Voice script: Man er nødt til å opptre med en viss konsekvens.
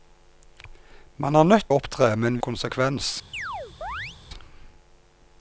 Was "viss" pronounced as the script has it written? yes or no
no